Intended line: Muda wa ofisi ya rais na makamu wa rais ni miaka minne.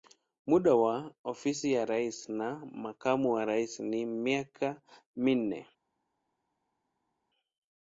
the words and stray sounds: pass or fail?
pass